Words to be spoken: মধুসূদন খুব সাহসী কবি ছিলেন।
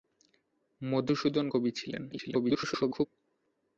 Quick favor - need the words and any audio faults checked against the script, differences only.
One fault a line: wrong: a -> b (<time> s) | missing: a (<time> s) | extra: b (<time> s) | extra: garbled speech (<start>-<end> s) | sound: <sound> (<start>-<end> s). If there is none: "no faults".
missing: খুব সাহসী (1.5 s)
extra: garbled speech (2.1-3.1 s)